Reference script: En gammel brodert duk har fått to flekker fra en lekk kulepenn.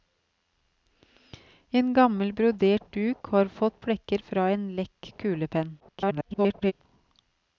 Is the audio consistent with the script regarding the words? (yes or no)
no